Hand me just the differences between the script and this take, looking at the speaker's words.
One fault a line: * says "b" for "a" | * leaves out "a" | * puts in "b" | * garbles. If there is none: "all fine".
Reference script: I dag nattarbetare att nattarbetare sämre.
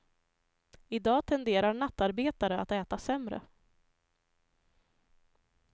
* puts in "tenderar"
* says "äta" for "nattarbetare"